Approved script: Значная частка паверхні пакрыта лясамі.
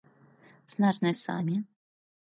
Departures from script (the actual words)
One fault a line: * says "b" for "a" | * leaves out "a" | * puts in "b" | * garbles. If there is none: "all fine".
* leaves out "частка паверхні пакрыта"